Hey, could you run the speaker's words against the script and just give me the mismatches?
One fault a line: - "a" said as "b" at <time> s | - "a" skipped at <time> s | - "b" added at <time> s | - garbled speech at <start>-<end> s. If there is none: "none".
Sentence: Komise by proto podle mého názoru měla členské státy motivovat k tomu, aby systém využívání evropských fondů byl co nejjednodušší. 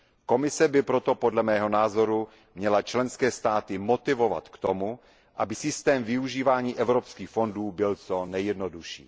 none